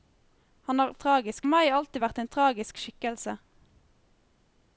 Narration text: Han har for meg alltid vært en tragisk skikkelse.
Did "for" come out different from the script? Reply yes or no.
yes